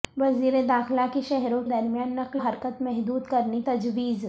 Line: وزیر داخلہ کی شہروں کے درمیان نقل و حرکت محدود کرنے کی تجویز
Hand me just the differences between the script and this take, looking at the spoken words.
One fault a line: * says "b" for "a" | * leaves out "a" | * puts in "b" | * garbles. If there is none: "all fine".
* leaves out "کے"
* leaves out "و"
* leaves out "کی"